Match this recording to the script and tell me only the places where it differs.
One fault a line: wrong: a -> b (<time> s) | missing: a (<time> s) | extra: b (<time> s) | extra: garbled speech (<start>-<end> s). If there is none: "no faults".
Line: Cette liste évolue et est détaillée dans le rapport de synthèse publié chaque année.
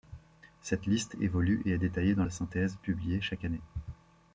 missing: le rapport (2.2 s)